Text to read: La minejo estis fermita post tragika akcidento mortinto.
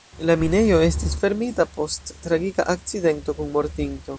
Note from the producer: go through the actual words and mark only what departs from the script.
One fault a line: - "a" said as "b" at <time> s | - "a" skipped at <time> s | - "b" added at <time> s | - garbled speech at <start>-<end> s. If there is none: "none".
- "kun" added at 3.4 s